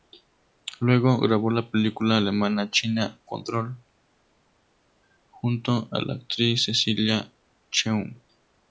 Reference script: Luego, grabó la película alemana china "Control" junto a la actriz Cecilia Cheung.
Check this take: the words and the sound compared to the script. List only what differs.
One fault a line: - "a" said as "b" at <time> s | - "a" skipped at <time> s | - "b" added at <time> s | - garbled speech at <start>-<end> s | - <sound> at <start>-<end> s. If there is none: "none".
none